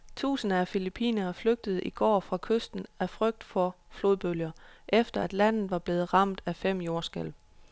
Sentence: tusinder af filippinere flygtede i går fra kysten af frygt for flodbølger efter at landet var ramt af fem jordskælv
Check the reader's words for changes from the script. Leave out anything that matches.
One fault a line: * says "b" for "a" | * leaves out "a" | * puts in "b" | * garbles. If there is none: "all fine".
* puts in "blevet"